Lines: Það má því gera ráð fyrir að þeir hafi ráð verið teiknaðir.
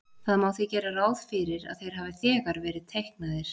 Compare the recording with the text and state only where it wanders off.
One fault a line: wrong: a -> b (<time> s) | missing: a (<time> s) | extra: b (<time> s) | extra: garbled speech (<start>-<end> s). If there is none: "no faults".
wrong: ráð -> þegar (2.2 s)